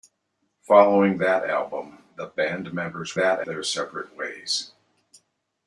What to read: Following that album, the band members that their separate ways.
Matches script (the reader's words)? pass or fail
pass